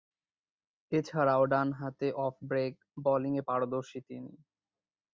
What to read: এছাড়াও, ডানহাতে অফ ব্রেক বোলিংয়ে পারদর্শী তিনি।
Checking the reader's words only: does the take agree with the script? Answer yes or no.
yes